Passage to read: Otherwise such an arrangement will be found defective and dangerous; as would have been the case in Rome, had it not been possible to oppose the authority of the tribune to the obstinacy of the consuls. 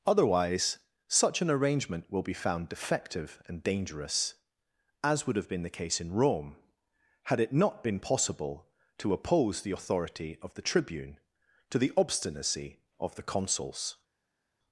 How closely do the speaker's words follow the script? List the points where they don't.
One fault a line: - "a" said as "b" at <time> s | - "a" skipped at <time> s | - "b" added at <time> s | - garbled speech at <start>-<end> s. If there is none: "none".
none